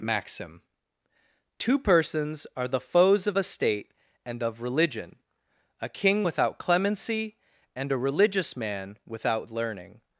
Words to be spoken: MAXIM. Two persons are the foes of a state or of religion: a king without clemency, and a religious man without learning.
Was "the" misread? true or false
false